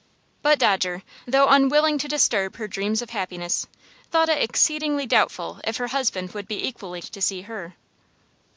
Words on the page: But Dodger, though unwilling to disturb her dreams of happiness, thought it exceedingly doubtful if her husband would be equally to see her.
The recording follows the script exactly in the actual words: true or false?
true